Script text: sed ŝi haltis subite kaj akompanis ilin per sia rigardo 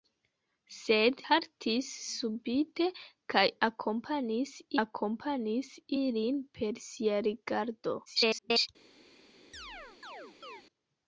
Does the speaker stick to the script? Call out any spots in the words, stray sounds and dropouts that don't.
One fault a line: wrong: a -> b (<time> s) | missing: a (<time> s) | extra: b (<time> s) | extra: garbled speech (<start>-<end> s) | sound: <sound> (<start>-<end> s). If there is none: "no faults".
missing: ŝi (1.2 s)
extra: akompanis (4.8 s)
extra: garbled speech (8.1-8.7 s)
sound: chirp (9.5-10.6 s)